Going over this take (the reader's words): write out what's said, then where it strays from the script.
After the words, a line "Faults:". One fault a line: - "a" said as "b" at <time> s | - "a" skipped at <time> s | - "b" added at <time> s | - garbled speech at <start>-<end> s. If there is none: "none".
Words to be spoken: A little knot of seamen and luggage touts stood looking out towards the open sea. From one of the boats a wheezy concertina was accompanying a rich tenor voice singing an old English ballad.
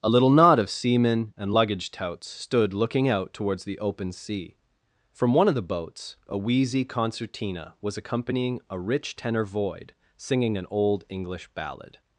A little knot of seamen and luggage touts stood looking out towards the open sea. From one of the boats a wheezy concertina was accompanying a rich tenor void singing an old English ballad.
Faults:
- "voice" said as "void" at 9.4 s